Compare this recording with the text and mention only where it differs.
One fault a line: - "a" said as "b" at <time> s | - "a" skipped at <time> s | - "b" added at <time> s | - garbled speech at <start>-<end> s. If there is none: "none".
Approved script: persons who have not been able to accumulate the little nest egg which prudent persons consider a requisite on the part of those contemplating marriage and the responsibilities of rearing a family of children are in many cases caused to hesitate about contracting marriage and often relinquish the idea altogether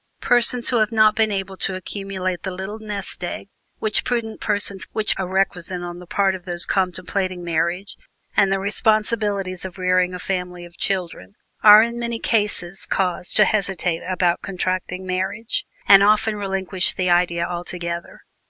- "consider" said as "which" at 4.9 s